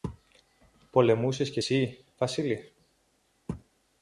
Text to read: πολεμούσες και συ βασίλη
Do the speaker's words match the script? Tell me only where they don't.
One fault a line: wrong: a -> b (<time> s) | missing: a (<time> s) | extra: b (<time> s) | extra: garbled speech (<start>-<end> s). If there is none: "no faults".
no faults